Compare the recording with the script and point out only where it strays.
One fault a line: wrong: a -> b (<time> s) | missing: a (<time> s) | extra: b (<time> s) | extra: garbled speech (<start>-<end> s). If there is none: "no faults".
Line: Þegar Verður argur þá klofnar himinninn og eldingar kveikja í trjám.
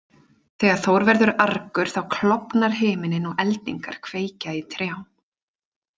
extra: Þór (0.8 s)